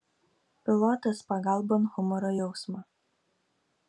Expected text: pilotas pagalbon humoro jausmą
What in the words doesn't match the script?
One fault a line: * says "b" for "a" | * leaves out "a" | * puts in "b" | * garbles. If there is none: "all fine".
all fine